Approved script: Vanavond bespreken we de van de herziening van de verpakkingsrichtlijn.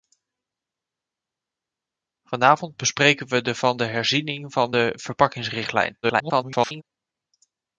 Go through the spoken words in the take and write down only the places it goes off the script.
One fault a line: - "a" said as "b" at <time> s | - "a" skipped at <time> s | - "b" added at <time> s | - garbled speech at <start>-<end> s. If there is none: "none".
- garbled speech at 6.0-6.8 s